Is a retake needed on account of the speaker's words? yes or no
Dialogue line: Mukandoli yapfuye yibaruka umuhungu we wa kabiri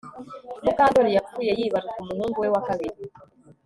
no